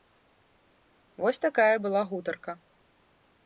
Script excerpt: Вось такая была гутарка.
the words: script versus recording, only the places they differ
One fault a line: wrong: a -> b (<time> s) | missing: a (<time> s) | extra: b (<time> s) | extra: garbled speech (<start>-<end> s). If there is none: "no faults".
no faults